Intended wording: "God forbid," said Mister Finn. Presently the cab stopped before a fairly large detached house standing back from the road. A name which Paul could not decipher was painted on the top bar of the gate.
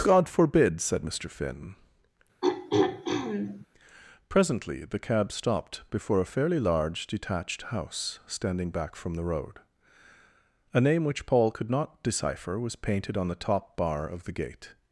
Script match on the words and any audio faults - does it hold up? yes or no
no